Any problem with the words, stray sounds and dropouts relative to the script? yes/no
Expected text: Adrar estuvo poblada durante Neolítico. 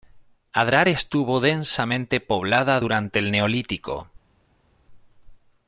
yes